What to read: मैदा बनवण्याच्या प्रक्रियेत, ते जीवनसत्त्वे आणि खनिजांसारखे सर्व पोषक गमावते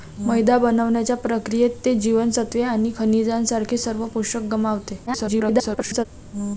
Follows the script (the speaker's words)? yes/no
no